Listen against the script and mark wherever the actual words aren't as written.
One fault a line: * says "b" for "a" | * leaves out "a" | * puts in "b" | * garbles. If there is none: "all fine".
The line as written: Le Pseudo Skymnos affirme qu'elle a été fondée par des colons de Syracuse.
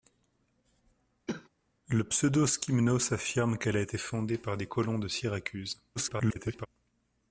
* garbles